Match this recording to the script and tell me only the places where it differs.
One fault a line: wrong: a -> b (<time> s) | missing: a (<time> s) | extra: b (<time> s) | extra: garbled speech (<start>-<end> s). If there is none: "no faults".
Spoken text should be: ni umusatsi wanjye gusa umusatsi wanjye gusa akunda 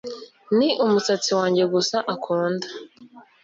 missing: umusatsi wanjye gusa (2.0 s)